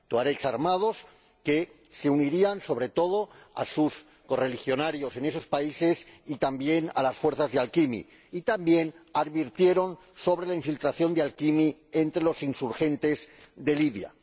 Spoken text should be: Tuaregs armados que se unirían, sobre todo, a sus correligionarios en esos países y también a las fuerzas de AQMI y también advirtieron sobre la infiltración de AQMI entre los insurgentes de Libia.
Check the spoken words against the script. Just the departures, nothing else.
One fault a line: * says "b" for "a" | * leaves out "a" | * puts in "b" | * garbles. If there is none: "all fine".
all fine